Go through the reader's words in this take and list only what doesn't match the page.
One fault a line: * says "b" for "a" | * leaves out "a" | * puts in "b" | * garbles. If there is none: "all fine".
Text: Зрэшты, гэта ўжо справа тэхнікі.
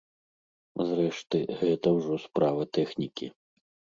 all fine